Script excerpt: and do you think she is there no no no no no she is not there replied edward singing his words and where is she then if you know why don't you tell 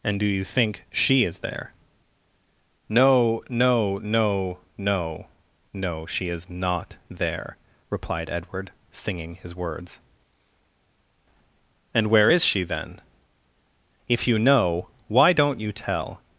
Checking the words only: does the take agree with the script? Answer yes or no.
yes